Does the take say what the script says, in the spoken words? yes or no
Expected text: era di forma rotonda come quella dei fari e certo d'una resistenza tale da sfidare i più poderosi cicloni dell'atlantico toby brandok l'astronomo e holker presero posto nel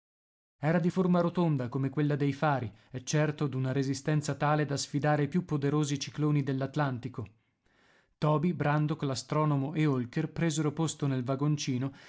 yes